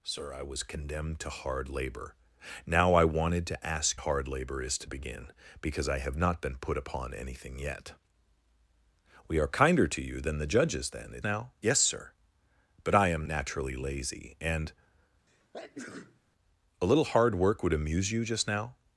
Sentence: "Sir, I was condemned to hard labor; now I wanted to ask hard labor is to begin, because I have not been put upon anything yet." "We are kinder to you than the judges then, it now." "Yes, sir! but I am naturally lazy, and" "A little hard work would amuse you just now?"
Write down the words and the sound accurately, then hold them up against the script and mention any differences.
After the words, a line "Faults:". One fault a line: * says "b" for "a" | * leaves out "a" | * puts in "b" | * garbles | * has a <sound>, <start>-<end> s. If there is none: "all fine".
"Sir, I was condemned to hard labor; now I wanted to ask hard labor is to begin, because I have not been put upon anything yet." "We are kinder to you than the judges then, it now." "Yes, sir! but I am naturally lazy, and" "A little hard work would amuse you just now?"
Faults:
* has a sneeze, 15.3-16.2 s